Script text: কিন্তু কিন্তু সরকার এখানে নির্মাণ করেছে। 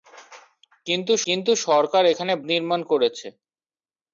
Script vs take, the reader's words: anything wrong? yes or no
no